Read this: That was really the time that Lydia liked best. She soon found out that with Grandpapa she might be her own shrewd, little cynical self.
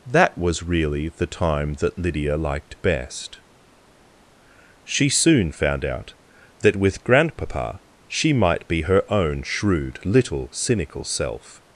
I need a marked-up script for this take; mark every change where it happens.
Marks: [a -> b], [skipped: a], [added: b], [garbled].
That was really the time that Lydia liked best. She soon found out that with Grandpapa she might be her own shrewd, little cynical self.